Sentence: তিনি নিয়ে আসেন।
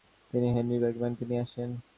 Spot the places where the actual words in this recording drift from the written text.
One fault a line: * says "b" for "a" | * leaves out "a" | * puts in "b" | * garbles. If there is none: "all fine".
* puts in "হেনরি বার্গম্যানকে"